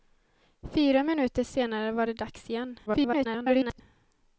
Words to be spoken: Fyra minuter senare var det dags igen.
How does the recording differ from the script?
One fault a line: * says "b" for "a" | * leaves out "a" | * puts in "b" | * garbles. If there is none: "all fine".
* garbles